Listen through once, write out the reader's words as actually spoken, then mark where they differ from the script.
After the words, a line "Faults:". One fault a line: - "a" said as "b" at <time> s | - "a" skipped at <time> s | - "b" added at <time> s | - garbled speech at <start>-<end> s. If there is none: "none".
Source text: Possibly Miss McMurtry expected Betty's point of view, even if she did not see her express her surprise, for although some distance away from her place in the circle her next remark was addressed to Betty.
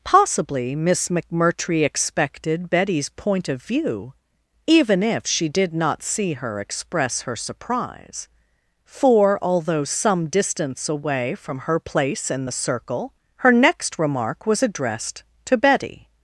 Possibly Miss McMurtry expected Betty's point of view, even if she did not see her express her surprise, for although some distance away from her place in the circle her next remark was addressed to Betty.
Faults:
none